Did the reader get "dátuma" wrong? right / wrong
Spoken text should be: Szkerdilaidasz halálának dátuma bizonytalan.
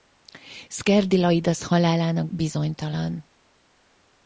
wrong